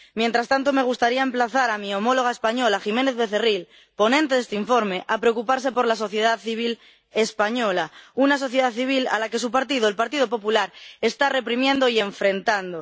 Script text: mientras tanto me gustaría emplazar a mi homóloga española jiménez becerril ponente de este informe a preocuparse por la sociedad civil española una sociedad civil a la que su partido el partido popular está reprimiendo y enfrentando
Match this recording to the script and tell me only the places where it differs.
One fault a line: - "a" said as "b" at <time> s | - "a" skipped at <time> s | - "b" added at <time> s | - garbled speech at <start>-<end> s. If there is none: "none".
none